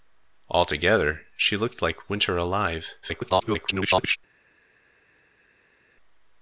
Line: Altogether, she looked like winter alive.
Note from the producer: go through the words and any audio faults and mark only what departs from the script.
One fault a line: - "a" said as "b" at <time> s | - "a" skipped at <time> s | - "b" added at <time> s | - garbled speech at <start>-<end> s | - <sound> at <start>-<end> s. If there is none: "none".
- garbled speech at 3.0-4.2 s